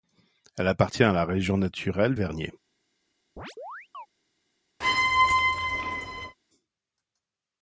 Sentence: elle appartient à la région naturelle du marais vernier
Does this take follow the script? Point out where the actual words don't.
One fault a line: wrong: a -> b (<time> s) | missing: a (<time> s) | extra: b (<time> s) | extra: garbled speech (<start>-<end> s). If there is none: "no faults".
missing: du marais (2.1 s)